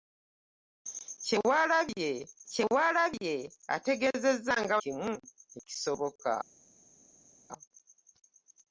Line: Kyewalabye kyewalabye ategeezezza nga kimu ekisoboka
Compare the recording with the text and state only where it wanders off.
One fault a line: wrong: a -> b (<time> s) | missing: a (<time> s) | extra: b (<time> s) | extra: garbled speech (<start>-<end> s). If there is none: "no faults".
no faults